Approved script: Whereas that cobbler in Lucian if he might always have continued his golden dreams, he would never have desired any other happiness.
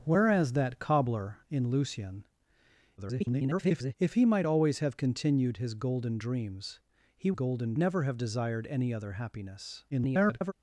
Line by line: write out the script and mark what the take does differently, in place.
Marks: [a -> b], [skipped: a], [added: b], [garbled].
Whereas that cobbler in Lucian [garbled] if he might always have continued his golden dreams, he [would -> golden] never have desired any other happiness. [garbled]